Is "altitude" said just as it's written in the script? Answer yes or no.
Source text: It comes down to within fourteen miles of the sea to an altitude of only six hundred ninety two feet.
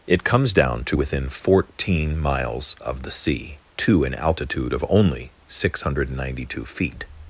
yes